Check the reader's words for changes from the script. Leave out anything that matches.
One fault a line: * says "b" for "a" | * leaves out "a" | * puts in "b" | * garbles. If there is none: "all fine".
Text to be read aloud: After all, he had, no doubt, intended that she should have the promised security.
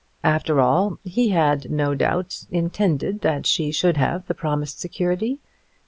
all fine